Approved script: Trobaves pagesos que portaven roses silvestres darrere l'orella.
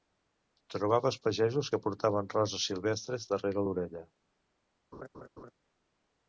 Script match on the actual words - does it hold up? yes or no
yes